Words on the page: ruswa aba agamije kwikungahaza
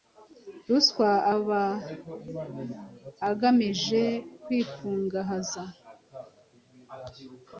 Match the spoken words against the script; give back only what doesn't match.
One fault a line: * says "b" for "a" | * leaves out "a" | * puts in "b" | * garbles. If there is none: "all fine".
all fine